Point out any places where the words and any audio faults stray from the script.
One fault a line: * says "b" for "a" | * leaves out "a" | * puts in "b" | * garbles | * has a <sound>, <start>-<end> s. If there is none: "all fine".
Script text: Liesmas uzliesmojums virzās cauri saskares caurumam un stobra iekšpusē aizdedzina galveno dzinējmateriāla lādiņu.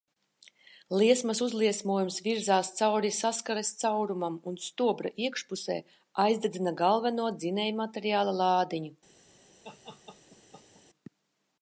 * has a laugh, 9.6-10.8 s